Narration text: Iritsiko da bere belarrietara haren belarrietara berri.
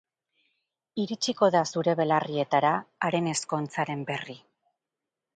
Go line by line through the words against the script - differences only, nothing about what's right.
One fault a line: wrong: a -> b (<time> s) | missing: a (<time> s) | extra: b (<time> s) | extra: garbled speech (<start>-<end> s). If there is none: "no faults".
wrong: bere -> zure (1.7 s)
wrong: belarrietara -> ezkontzaren (3.3 s)